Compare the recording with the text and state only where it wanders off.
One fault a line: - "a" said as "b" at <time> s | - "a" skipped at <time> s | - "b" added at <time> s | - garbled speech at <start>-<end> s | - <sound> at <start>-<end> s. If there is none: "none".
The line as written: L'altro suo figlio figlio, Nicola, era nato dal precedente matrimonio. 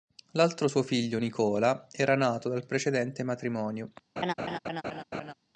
- "figlio" skipped at 1.2 s
- laugh at 4.2-5.3 s